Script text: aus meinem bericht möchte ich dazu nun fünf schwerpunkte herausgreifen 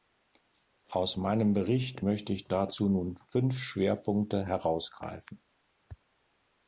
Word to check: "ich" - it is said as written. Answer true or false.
true